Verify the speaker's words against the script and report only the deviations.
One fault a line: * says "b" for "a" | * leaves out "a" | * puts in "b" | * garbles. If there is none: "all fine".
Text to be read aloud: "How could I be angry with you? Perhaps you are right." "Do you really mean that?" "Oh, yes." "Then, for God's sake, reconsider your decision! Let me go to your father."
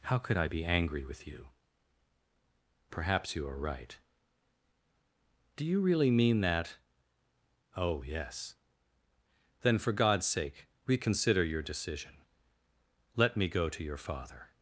all fine